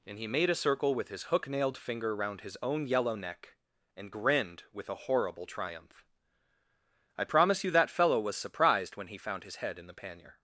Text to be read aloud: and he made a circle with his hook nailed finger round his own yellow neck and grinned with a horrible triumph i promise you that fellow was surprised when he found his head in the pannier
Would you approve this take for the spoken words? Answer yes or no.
yes